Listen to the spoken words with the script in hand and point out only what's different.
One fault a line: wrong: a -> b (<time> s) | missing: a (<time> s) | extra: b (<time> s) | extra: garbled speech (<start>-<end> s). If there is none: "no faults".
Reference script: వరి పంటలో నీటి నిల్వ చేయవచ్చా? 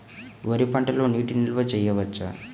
no faults